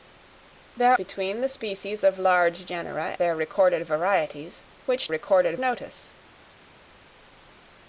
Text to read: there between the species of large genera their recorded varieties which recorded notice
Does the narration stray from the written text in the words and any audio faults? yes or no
no